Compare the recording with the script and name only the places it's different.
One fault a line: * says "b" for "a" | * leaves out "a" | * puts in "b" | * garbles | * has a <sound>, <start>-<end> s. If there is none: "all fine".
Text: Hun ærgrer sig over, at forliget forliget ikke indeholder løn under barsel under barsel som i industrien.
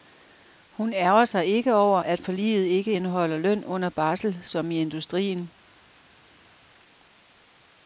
* puts in "ikke"
* leaves out "forliget"
* leaves out "under barsel"